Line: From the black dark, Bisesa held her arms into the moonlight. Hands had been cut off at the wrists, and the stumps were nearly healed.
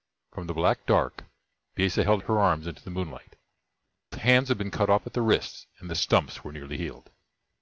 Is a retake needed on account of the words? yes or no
no